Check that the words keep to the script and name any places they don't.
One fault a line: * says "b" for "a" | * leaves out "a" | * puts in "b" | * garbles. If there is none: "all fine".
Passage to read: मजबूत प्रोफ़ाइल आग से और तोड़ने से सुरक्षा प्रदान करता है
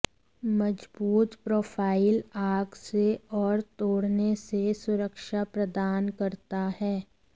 all fine